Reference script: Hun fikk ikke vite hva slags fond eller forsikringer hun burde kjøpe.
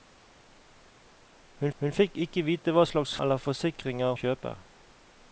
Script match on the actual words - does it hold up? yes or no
no